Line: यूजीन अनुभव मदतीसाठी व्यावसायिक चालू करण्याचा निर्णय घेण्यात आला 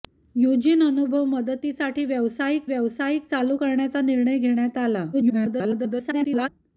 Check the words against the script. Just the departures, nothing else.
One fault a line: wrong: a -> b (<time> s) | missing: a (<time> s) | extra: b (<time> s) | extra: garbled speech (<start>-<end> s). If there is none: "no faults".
extra: व्यावसायिक (2.7 s)
extra: garbled speech (5.1-6.5 s)